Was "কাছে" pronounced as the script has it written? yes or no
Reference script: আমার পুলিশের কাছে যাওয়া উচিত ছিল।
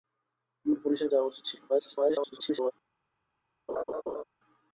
no